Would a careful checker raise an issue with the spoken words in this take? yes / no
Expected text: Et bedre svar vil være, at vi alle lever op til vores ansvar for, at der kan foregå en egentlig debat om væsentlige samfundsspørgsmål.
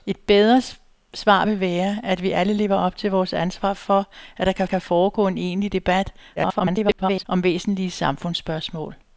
yes